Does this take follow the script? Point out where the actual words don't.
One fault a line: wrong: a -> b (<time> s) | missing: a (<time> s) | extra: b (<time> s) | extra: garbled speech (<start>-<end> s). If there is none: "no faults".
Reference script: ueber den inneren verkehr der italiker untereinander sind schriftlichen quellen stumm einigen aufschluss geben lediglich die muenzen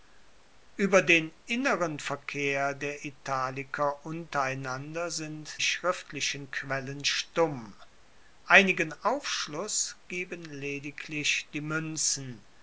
no faults